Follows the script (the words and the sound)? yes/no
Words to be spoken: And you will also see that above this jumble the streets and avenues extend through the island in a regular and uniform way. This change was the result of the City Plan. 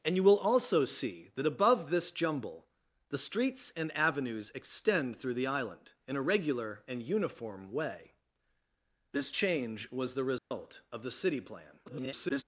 no